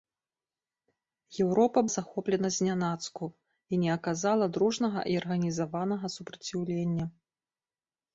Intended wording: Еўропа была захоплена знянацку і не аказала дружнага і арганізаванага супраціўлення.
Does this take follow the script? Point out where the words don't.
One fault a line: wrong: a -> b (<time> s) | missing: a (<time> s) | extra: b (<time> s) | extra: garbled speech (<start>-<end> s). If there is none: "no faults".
missing: была (1.8 s)